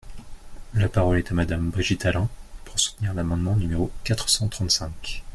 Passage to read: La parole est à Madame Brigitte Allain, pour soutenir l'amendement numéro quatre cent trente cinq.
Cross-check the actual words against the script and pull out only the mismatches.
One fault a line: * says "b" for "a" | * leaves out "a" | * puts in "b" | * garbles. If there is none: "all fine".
all fine